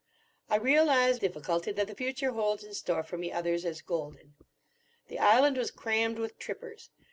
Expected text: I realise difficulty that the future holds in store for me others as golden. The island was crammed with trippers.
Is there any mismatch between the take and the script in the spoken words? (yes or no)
no